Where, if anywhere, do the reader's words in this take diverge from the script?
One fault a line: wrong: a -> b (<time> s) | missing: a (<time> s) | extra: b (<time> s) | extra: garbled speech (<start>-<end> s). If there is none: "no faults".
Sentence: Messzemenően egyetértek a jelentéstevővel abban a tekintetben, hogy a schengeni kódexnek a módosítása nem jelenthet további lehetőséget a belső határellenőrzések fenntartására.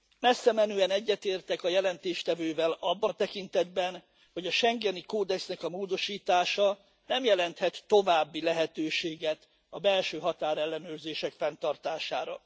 no faults